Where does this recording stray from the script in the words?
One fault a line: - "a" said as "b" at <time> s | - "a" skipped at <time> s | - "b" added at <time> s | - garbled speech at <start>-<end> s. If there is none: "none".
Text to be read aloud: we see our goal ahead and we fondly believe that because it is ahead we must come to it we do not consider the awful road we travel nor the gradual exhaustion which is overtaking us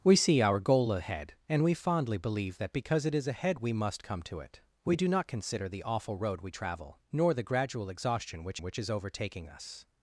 - "which" added at 8.6 s